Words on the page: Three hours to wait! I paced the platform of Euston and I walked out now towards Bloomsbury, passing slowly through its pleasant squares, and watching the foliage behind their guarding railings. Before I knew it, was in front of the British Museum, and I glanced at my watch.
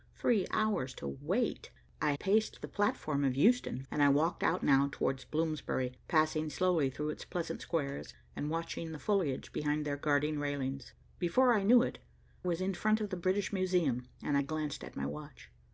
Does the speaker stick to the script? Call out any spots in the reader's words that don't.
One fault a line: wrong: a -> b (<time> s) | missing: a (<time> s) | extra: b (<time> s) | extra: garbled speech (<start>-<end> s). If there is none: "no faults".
no faults